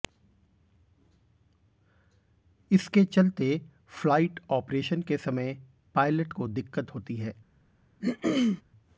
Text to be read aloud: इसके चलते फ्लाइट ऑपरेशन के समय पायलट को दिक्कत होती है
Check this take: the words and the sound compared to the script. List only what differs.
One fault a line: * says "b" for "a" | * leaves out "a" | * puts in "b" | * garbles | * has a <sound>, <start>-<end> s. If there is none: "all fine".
* has a throat clearing, 8.0-8.6 s